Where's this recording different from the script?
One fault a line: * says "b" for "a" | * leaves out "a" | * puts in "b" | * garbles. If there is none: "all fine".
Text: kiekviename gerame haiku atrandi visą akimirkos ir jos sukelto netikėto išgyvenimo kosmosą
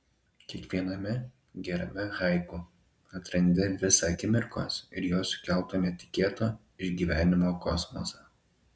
all fine